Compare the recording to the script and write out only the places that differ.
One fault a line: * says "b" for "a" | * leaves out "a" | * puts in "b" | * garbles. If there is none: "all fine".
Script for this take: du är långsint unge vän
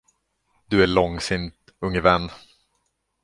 all fine